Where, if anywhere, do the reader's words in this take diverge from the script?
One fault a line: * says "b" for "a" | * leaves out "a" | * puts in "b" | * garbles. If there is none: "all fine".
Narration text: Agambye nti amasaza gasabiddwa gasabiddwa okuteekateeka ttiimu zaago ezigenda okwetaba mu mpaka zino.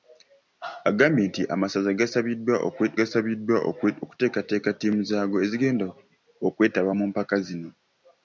all fine